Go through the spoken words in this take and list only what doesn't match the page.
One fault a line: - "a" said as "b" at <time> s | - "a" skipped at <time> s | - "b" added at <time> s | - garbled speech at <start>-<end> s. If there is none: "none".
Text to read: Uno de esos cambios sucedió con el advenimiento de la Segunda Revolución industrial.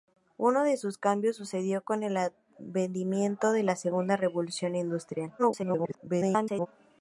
- garbled speech at 5.4-6.7 s